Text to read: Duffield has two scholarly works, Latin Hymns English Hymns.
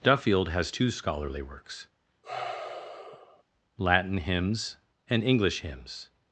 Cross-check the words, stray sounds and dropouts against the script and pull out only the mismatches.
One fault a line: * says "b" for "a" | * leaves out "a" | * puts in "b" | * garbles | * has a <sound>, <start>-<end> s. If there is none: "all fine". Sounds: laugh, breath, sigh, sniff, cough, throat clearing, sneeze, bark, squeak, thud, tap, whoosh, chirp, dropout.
* has a sigh, 2.2-3.4 s
* puts in "and"